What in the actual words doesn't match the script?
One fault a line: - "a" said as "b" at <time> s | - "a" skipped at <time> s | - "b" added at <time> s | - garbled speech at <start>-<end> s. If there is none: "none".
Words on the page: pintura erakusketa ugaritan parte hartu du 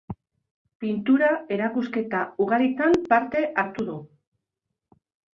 none